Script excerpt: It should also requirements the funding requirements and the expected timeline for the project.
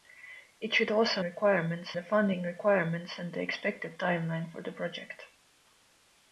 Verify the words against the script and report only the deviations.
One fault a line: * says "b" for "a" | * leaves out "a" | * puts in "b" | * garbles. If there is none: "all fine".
all fine